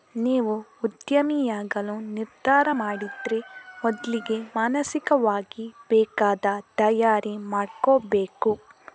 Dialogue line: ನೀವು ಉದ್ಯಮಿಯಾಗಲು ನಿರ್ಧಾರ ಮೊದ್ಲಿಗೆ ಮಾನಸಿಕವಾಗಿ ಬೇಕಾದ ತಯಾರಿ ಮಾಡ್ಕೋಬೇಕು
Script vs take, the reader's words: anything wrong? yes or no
yes